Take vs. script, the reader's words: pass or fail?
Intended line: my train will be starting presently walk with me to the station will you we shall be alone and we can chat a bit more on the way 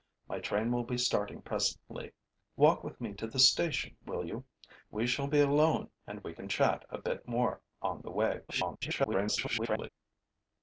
fail